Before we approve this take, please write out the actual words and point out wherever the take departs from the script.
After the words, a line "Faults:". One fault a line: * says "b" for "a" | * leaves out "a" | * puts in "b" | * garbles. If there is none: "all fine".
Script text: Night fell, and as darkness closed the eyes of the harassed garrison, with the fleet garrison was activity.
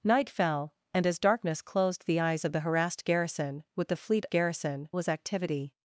Night fell, and as darkness closed the eyes of the harassed garrison, with the fleet garrison was activity.
Faults:
all fine